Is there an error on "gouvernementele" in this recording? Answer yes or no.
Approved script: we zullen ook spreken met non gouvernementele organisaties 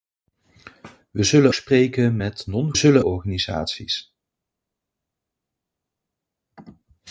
yes